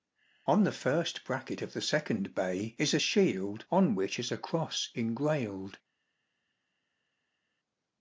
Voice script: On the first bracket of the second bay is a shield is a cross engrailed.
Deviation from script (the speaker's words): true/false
true